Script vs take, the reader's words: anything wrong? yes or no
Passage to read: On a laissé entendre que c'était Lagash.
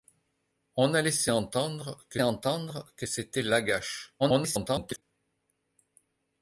yes